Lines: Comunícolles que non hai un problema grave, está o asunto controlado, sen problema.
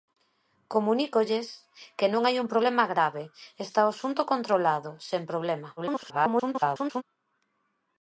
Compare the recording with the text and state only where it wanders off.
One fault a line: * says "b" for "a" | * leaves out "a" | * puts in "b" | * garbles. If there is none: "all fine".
* garbles